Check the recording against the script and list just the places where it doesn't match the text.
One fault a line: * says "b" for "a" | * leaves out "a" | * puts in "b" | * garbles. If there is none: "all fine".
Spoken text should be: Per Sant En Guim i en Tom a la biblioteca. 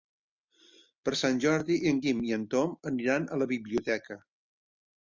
* puts in "Jordi"
* puts in "aniran"